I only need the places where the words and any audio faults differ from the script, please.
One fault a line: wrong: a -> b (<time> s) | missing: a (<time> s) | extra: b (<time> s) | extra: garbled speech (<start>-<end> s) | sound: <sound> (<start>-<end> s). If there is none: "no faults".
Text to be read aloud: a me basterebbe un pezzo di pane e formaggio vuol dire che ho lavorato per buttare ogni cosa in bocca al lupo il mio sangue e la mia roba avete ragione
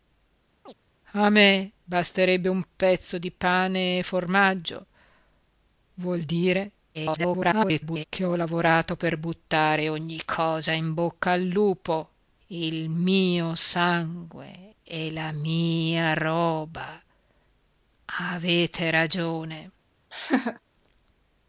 sound: chirp (0.7-0.7 s)
extra: garbled speech (6.9-8.1 s)
sound: laugh (20.1-20.6 s)